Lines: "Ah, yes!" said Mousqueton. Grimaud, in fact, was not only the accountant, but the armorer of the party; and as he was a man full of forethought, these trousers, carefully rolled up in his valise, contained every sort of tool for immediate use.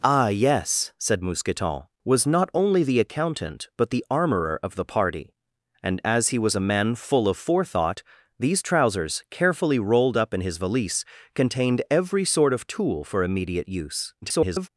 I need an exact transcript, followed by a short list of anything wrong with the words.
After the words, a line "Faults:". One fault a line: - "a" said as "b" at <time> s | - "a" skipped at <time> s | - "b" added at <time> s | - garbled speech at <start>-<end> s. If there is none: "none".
"Ah, yes!" said Mousqueton. Was not only the accountant, but the armorer of the party; and as he was a man full of forethought, these trousers, carefully rolled up in his valise, contained every sort of tool for immediate use. [garbled]
Faults:
- "Grimaud in fact" skipped at 1.8 s
- garbled speech at 14.2-14.7 s